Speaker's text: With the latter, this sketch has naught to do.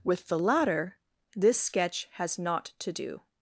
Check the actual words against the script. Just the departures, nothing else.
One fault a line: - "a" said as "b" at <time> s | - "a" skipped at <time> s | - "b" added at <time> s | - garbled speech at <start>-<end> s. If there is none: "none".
none